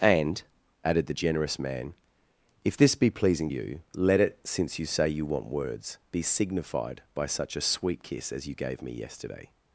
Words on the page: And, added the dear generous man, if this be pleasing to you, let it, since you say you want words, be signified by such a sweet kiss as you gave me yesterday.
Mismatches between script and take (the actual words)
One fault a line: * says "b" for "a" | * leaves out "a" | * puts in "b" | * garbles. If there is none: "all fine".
* leaves out "dear"
* leaves out "to"